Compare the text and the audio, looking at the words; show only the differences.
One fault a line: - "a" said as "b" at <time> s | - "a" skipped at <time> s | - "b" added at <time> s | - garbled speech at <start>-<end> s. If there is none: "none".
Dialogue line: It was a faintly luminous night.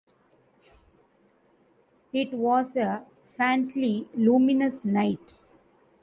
none